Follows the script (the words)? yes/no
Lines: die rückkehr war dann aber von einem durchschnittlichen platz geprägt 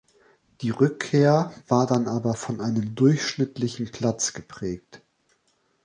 yes